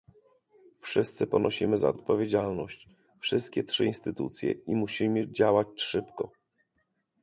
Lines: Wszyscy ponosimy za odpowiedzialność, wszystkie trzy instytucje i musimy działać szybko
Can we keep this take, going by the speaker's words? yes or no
yes